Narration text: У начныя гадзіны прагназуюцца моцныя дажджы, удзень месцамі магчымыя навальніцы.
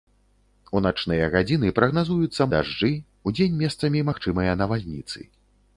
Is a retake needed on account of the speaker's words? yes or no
yes